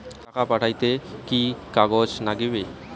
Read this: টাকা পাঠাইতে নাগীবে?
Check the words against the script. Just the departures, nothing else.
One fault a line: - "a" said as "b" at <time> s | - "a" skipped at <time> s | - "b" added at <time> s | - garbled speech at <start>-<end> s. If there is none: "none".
- "কি কাগজ" added at 1.3 s